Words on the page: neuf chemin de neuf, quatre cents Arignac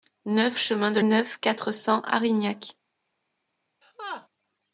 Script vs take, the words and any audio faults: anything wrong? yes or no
yes